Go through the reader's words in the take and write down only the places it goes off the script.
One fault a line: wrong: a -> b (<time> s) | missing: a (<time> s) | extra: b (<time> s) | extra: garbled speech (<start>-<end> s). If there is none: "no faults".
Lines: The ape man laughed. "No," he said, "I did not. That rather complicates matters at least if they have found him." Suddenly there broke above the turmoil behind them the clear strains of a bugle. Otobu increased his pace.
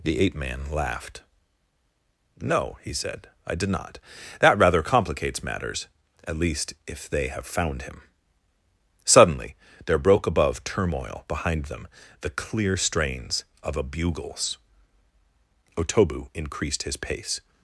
missing: the (10.6 s)
wrong: bugle -> bugles (13.8 s)